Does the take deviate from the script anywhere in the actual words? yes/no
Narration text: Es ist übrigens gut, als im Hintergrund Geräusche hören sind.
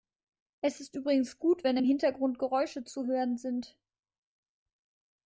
yes